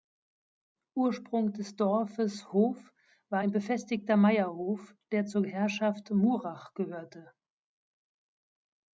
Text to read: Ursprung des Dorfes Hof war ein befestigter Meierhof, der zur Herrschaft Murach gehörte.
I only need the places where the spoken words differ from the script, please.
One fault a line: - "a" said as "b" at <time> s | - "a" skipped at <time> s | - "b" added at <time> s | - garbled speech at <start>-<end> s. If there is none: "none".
none